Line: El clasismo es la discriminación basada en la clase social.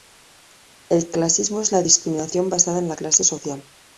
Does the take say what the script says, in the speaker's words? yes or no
yes